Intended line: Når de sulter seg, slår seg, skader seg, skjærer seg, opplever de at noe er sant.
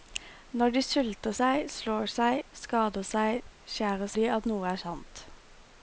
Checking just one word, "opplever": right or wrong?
wrong